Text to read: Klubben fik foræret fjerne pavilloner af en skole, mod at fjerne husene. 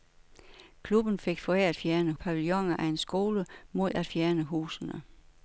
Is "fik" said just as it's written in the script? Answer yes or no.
yes